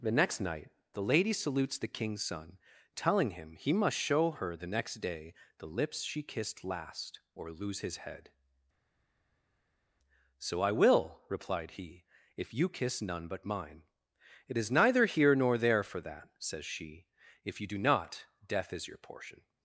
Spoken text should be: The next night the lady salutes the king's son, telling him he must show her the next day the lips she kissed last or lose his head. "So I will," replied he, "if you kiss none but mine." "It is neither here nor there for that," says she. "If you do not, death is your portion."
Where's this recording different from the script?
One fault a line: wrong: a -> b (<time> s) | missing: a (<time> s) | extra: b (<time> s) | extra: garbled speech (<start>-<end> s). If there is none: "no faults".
no faults